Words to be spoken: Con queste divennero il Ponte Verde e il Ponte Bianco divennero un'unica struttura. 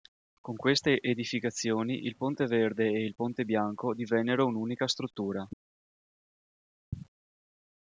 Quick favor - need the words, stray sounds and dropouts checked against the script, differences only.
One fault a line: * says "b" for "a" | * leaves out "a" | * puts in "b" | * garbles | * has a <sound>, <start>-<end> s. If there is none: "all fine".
* says "edificazioni" for "divennero"